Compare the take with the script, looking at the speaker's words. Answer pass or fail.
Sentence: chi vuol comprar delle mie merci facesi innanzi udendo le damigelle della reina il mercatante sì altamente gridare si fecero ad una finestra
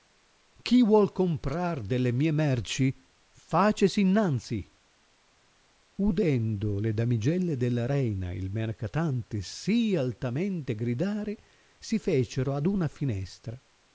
pass